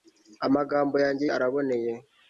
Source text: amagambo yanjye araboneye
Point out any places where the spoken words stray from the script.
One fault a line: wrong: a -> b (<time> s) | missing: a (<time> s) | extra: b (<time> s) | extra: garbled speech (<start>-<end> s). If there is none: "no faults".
no faults